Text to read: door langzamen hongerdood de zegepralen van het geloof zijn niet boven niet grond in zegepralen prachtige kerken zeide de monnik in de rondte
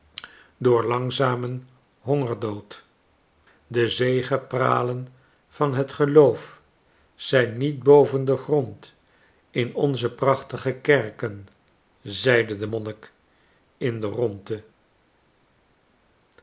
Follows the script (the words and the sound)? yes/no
no